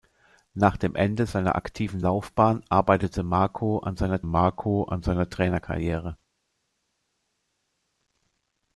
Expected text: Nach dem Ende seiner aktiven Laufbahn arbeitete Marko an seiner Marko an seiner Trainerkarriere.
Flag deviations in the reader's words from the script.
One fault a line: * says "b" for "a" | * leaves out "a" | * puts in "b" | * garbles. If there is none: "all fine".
all fine